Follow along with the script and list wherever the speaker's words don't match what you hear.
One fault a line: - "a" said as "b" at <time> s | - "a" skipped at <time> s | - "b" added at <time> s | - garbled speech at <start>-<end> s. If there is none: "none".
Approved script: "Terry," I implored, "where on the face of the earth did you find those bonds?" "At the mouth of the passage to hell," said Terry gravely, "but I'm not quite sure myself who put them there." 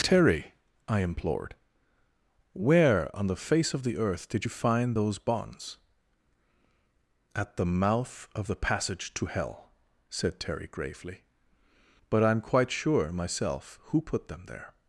- "not" skipped at 12.4 s